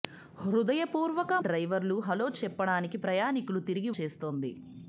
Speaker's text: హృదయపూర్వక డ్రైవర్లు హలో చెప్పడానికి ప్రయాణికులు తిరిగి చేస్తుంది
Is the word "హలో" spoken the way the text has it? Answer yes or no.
yes